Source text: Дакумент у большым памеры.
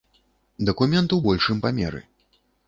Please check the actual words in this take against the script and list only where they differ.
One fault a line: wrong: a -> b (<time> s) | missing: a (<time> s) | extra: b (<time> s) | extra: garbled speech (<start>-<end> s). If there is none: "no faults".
no faults